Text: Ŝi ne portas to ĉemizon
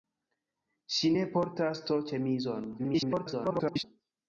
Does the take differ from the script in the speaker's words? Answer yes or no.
yes